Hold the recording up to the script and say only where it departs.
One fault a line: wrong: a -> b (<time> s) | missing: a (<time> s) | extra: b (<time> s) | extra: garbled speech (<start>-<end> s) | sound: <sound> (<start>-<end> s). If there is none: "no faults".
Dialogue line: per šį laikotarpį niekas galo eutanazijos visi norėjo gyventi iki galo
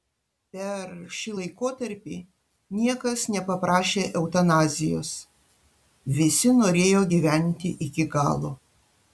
wrong: galo -> nepaprašė (3.4 s)